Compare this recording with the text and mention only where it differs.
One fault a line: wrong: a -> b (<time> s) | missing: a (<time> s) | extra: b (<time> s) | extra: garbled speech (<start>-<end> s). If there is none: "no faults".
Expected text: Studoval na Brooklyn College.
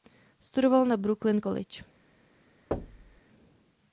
no faults